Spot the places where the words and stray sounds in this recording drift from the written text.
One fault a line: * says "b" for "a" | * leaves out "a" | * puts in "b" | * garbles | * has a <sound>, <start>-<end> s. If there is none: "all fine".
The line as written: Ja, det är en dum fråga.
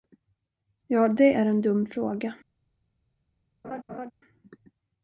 * has a laugh, 3.6-4.1 s